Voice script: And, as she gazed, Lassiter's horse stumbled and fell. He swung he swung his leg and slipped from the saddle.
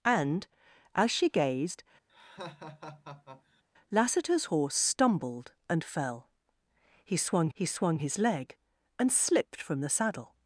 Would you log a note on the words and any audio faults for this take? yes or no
yes